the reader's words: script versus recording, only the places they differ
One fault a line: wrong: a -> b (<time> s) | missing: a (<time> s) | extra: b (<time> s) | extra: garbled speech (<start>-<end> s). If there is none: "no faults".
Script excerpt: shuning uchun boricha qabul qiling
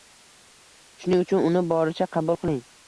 extra: uni (1.5 s)